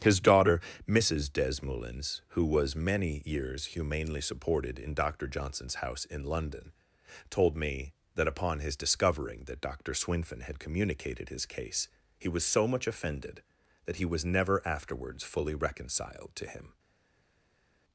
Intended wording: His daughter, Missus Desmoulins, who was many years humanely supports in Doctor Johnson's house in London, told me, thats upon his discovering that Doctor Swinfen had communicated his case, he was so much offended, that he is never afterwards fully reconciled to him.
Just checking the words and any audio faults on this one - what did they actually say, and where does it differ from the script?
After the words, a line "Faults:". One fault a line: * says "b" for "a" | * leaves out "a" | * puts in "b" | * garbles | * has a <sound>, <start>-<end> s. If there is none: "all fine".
His daughter, Missus Desmoulins, who was many years humanely supported in Doctor Johnson's house in London, told me, that upon his discovering that Doctor Swinfen had communicated his case, he was so much offended, that he was never afterwards fully reconciled to him.
Faults:
* says "supported" for "supports"
* says "that" for "thats"
* says "was" for "is"